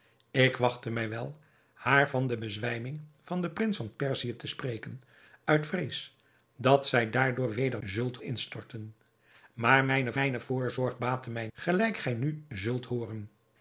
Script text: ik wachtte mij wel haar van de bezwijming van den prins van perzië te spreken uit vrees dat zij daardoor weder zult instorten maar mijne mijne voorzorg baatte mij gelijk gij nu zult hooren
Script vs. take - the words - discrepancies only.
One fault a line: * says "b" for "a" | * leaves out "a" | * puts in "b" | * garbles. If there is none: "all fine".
all fine